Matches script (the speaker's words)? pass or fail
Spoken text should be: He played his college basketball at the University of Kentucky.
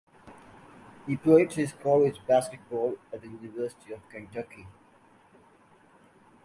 pass